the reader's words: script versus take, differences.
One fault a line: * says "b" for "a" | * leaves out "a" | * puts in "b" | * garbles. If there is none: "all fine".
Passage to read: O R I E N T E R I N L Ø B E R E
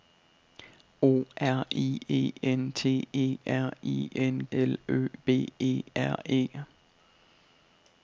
all fine